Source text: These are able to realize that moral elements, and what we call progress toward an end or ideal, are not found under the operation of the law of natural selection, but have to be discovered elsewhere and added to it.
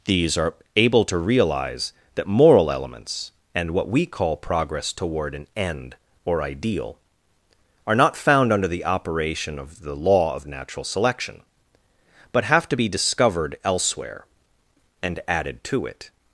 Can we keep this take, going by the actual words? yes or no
yes